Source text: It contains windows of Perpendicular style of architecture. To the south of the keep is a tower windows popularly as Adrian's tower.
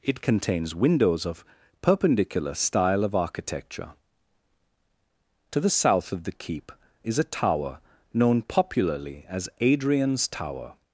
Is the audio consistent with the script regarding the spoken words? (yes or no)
no